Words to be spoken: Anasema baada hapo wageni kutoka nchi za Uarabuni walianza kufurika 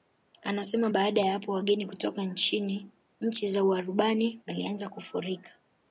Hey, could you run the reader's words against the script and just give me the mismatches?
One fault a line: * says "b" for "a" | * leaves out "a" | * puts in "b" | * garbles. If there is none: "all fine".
* puts in "ya"